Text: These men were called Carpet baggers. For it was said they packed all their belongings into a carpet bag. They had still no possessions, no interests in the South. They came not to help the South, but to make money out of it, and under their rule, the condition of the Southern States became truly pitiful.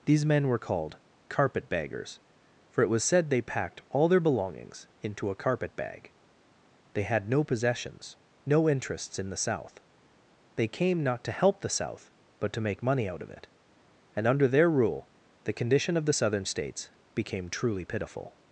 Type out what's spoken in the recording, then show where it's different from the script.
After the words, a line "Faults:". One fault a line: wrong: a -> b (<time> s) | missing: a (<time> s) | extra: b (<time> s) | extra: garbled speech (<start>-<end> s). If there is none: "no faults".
These men were called Carpet baggers. For it was said they packed all their belongings into a carpet bag. They had no possessions, no interests in the South. They came not to help the South, but to make money out of it, and under their rule, the condition of the Southern States became truly pitiful.
Faults:
missing: still (7.3 s)